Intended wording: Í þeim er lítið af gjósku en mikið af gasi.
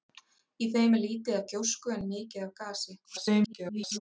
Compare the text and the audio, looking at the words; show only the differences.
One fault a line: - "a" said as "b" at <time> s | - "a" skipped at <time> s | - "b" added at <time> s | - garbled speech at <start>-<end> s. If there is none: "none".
- garbled speech at 3.0-4.0 s